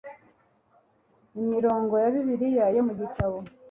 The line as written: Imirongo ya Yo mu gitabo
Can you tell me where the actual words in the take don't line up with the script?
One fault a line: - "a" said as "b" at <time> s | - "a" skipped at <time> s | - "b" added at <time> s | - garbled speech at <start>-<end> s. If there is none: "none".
- "Bibiliya" added at 2.1 s